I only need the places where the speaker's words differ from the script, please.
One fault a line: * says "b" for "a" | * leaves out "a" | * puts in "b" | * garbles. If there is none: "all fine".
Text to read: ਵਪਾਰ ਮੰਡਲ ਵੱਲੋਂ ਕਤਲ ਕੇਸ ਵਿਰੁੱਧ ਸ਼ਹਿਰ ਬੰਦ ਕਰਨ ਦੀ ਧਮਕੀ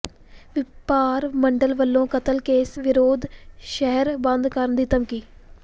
all fine